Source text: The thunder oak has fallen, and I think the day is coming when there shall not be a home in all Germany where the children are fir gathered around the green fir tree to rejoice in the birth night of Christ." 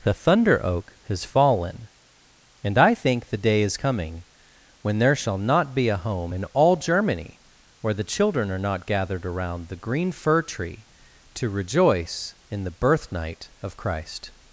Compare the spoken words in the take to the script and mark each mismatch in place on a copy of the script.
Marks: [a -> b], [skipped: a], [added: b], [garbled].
The thunder oak has fallen, and I think the day is coming when there shall not be a home in all Germany where the children are [fir -> not] gathered around the green fir tree to rejoice in the birth night of Christ."